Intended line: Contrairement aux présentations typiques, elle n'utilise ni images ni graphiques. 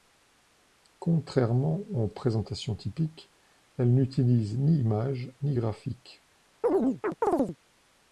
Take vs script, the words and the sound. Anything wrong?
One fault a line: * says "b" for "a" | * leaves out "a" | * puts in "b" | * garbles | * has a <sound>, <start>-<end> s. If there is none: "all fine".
* has a chirp, 6.6-7.6 s